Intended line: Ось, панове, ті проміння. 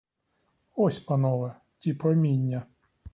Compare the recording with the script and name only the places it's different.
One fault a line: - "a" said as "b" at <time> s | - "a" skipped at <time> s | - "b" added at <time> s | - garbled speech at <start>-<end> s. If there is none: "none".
none